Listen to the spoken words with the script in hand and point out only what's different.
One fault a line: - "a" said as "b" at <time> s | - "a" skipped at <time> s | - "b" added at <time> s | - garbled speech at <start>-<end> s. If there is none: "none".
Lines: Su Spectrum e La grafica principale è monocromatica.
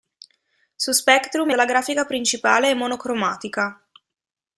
none